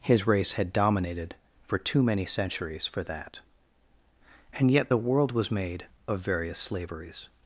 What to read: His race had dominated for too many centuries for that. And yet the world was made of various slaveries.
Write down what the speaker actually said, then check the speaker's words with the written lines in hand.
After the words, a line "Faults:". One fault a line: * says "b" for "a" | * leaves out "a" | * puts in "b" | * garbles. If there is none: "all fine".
His race had dominated for too many centuries for that. And yet the world was made of various slaveries.
Faults:
all fine